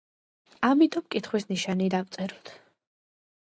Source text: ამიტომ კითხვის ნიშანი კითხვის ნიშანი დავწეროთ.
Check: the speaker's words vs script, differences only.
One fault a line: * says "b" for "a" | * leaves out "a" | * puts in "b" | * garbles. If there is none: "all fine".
* leaves out "კითხვის ნიშანი"